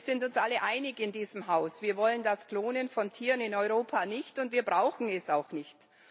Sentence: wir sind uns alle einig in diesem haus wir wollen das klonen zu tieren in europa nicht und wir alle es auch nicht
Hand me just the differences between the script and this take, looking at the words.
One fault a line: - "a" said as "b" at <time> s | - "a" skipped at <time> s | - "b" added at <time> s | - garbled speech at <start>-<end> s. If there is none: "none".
- "zu" said as "von" at 2.9 s
- "alle" said as "brauchen" at 4.6 s